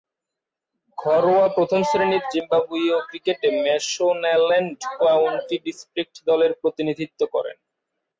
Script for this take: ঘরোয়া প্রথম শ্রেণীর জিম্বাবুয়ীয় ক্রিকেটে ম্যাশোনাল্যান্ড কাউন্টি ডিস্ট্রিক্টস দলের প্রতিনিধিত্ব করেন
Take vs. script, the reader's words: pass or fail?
pass